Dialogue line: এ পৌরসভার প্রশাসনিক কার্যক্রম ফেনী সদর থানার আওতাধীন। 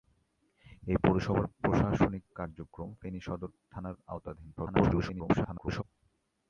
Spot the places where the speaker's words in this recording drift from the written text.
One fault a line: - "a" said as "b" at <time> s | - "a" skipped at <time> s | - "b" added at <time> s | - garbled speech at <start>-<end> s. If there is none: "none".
- garbled speech at 4.6-5.8 s